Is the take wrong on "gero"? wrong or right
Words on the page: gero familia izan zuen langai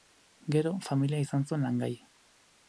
right